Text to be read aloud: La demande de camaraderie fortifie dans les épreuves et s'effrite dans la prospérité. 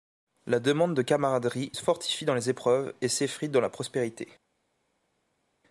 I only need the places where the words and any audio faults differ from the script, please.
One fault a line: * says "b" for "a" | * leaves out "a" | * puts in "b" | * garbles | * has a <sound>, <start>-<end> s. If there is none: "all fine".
all fine